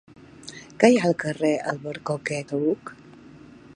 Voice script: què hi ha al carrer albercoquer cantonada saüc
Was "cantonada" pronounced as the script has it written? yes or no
no